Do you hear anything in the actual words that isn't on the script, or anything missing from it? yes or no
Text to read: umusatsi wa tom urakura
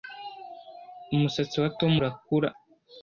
no